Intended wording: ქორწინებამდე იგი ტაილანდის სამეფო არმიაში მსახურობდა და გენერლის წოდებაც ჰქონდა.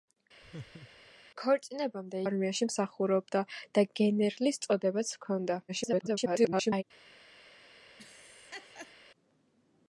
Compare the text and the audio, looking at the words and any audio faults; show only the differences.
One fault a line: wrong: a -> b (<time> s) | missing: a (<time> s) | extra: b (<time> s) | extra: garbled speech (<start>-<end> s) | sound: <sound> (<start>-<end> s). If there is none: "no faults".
sound: laugh (0.4-1.1 s)
missing: იგი ტაილანდის სამეფო (2.2 s)
extra: garbled speech (5.7-6.8 s)
sound: laugh (8.0-8.9 s)